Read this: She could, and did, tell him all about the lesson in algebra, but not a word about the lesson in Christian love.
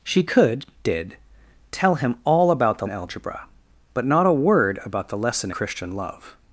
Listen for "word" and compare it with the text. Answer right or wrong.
right